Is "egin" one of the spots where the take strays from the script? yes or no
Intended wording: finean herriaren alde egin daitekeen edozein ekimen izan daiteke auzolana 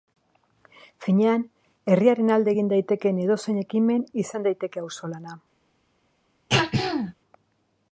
no